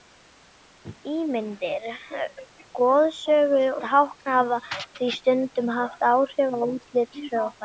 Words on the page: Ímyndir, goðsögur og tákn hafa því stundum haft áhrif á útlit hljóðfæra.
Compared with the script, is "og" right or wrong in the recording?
wrong